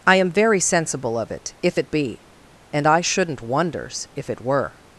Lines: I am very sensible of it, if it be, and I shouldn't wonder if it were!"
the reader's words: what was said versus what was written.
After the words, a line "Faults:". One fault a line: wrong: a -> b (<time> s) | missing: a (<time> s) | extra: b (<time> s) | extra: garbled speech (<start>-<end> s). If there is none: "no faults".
I am very sensible of it, if it be, and I shouldn't wonders if it were!"
Faults:
wrong: wonder -> wonders (3.4 s)